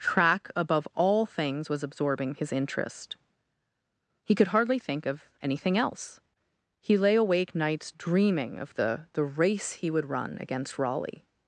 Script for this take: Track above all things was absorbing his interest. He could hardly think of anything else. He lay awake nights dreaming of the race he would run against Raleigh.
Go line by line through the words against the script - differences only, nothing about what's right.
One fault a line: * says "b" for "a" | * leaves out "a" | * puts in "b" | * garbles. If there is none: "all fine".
* puts in "the"